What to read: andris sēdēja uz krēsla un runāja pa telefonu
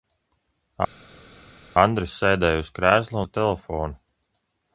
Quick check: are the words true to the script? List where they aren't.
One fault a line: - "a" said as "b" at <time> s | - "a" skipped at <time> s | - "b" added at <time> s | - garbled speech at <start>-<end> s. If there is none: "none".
- "un runāja" skipped at 3.2 s